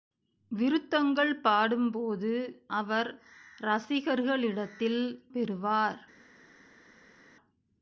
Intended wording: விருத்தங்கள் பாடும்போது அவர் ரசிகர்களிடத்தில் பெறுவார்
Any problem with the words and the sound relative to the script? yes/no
no